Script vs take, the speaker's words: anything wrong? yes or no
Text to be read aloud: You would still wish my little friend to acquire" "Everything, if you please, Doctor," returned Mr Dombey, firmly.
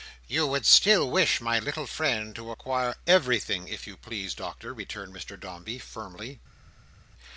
no